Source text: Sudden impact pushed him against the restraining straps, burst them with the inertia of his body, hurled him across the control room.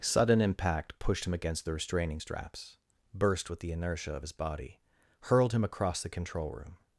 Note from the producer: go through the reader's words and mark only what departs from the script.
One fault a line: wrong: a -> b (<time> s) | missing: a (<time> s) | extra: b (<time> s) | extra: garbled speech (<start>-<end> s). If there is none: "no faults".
missing: them (3.5 s)